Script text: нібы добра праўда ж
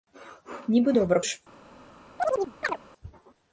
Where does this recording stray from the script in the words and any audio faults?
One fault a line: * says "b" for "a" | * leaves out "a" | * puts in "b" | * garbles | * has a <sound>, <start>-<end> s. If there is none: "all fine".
* leaves out "праўда"
* has a chirp, 2.2-2.8 s